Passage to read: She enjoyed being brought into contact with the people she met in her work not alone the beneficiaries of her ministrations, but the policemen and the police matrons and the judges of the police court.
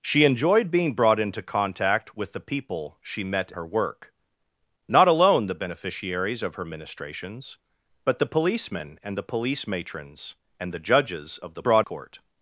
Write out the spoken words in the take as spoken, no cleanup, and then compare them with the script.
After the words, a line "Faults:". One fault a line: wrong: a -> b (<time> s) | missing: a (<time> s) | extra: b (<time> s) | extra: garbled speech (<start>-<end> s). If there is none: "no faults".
She enjoyed being brought into contact with the people she met her work not alone the beneficiaries of her ministrations, but the policemen and the police matrons and the judges of the brought court.
Faults:
missing: in (3.5 s)
wrong: police -> brought (11.6 s)